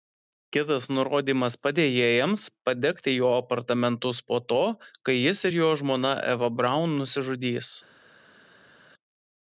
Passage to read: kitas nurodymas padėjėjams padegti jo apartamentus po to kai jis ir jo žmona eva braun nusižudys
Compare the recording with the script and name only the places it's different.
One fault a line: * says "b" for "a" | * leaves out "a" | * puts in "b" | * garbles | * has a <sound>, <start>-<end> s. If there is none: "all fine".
all fine